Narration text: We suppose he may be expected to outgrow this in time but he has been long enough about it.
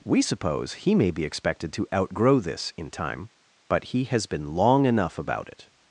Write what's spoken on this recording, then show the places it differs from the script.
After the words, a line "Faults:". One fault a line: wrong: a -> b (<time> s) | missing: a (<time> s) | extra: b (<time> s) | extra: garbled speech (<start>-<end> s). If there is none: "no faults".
We suppose he may be expected to outgrow this in time but he has been long enough about it.
Faults:
no faults